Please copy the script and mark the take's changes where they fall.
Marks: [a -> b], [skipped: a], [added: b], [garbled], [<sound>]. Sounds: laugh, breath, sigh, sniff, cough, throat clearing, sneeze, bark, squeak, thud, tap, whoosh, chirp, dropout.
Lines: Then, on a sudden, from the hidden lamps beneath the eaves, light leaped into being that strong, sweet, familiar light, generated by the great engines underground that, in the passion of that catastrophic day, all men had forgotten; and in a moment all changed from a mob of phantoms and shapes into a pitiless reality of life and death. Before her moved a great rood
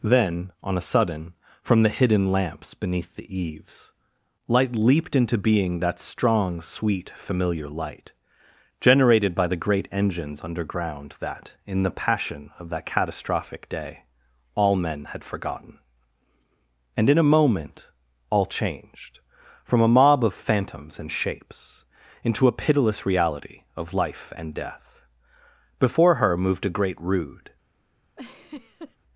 Then, on a sudden, from the hidden lamps beneath the eaves, light leaped into being that strong, sweet, familiar light, generated by the great engines underground that, in the passion of that catastrophic day, all men had forgotten; and in a moment all changed from a mob of phantoms and shapes into a pitiless reality of life and death. Before her moved a great rood [laugh]